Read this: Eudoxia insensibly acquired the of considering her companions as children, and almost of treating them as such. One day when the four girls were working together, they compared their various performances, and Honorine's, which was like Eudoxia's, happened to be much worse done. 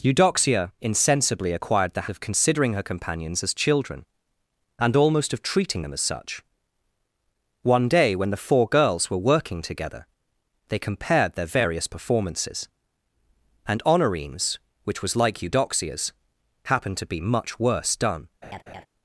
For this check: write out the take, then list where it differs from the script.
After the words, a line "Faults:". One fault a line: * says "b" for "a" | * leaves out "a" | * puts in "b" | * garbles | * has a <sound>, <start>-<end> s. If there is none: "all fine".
Eudoxia insensibly acquired the of considering her companions as children, and almost of treating them as such. One day when the four girls were working together, they compared their various performances, and Honorine's, which was like Eudoxia's, happened to be much worse done.
Faults:
* has a laugh, 18.4-18.9 s